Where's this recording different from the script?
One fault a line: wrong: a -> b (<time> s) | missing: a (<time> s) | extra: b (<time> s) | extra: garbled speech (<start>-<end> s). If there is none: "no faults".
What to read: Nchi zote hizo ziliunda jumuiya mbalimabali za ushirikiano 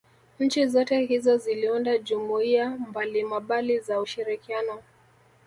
no faults